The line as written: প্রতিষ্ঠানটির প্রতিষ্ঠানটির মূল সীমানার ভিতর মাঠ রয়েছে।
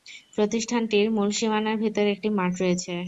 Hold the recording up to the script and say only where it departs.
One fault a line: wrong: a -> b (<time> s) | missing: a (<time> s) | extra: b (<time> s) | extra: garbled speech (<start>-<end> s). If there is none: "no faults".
missing: প্রতিষ্ঠানটির (1.1 s)
extra: একটি (2.1 s)